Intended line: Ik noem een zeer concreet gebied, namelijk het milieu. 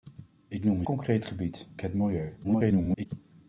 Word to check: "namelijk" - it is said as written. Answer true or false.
false